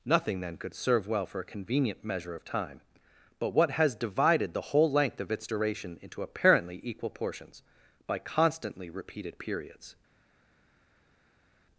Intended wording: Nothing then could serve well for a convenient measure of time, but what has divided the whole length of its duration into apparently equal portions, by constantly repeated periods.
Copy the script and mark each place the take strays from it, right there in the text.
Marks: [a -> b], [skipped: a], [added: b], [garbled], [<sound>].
Nothing then could serve well for a convenient measure of time, but what has divided the whole length of its duration into apparently equal portions, by constantly repeated periods.